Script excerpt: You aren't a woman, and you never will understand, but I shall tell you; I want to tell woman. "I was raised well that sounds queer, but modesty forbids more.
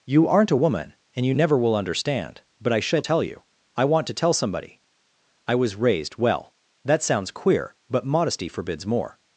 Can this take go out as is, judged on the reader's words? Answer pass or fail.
fail